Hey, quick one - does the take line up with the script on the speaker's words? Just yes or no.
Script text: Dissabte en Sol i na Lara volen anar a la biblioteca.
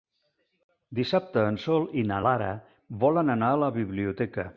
yes